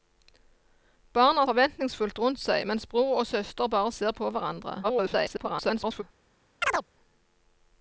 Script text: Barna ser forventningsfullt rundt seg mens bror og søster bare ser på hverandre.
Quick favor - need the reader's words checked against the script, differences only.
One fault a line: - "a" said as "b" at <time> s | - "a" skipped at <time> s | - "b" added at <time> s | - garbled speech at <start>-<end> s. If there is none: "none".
- "ser" skipped at 1.4 s
- garbled speech at 4.8-6.0 s